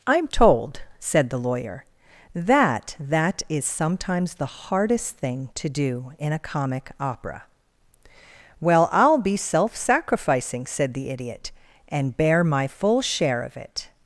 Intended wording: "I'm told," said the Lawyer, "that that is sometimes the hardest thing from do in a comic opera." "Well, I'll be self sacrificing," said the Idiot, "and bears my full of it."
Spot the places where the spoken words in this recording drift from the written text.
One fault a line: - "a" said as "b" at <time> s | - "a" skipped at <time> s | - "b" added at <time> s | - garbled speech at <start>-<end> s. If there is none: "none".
- "from" said as "to" at 5.5 s
- "bears" said as "bear" at 12.2 s
- "share" added at 13.0 s